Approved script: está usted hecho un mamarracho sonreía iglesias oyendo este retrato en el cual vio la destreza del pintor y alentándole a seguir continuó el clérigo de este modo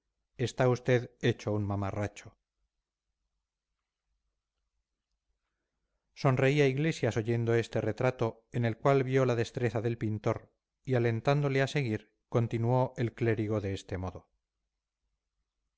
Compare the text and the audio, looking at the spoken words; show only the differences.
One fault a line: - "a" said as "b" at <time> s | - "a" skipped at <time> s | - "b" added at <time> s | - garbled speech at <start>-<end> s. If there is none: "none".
none